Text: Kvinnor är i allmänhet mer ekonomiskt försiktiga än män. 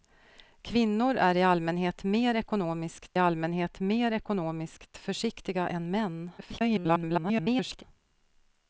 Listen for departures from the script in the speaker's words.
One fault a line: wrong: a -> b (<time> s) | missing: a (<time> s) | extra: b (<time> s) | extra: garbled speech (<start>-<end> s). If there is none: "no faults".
extra: allmänhet mer ekonomiskt (3.2 s)
extra: garbled speech (6.4-7.8 s)